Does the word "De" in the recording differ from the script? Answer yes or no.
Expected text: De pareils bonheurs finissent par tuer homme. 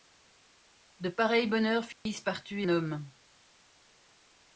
no